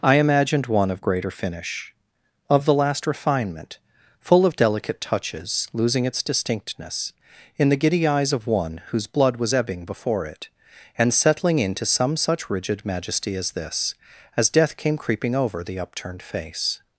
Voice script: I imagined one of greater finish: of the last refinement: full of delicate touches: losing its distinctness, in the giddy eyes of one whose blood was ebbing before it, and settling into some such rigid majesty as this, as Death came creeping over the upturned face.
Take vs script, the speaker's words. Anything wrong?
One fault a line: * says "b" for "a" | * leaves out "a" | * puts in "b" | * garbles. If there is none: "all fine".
all fine